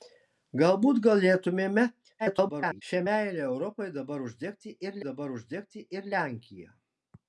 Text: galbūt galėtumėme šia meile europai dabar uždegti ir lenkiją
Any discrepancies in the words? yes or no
yes